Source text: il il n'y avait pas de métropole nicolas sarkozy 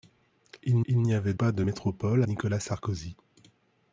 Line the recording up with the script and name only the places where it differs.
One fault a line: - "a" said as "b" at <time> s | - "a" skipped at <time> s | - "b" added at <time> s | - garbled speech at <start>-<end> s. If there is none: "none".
none